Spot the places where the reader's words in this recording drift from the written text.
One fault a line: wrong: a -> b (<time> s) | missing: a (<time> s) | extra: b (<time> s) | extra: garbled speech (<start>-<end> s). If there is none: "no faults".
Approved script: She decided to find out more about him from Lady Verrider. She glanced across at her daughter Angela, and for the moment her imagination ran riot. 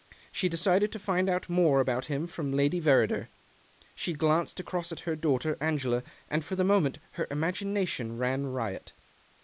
no faults